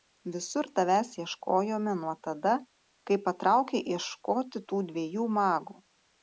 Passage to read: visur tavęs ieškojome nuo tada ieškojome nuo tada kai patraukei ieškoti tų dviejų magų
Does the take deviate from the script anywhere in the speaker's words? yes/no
yes